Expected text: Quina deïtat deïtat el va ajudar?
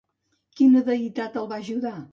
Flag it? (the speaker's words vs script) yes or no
yes